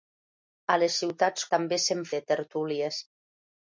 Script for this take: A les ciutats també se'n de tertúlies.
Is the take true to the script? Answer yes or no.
yes